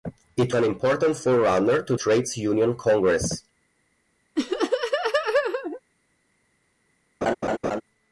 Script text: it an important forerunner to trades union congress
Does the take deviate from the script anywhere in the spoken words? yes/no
no